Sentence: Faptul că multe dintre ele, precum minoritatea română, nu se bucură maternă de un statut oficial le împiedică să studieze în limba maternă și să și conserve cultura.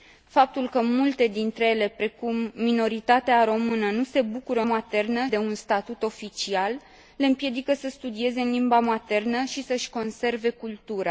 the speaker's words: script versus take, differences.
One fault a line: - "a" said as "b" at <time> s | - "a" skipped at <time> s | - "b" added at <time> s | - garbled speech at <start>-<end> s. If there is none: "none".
none